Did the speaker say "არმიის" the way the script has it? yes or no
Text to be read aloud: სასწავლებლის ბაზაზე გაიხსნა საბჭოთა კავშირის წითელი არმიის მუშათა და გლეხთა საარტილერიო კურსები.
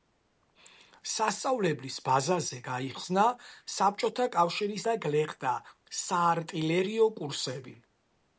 no